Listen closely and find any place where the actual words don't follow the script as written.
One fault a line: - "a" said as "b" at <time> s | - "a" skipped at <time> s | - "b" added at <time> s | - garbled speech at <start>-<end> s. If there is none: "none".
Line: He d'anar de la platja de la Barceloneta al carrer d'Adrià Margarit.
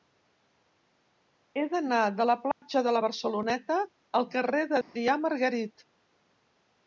none